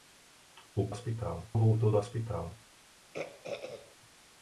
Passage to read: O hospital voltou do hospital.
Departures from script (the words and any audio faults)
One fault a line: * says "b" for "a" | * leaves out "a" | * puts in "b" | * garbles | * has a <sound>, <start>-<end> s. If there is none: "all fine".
* has a throat clearing, 3.1-4.0 s